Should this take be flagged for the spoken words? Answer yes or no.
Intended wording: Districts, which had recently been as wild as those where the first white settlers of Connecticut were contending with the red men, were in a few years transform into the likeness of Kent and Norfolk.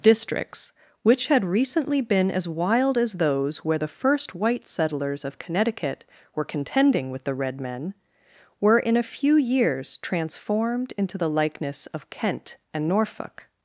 yes